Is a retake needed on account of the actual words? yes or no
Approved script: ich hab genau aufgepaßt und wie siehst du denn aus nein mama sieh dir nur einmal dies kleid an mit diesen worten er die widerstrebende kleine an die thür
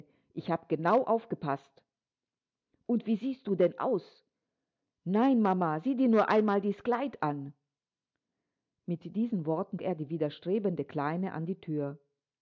no